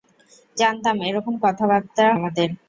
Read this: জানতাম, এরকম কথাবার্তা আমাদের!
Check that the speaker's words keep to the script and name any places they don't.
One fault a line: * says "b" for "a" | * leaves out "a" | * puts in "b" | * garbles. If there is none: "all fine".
all fine